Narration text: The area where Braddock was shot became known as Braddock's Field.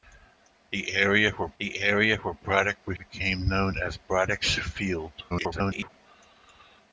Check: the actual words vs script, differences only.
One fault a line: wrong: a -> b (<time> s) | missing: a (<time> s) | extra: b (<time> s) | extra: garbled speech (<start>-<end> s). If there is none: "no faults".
extra: the area where (1.6 s)
missing: shot (3.0 s)
extra: garbled speech (5.3-5.9 s)